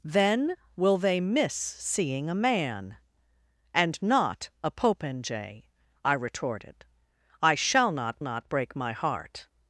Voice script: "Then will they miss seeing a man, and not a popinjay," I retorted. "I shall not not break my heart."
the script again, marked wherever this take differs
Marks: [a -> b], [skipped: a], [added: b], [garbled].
"Then will they miss seeing a man, and not a popinjay," I retorted. "I shall not not break my heart."